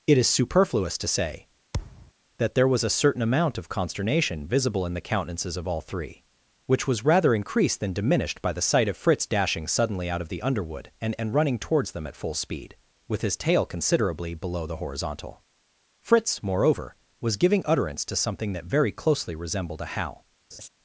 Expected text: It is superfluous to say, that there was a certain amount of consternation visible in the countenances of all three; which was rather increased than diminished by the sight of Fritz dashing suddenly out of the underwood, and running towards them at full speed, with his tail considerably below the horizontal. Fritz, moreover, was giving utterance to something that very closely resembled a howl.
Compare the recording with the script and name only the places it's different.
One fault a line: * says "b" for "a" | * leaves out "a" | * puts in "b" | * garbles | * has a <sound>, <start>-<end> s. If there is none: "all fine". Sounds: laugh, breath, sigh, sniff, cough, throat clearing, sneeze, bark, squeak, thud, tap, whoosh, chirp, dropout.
* has a thud, 1.7-2.1 s
* puts in "and"
* has a laugh, 20.5-20.7 s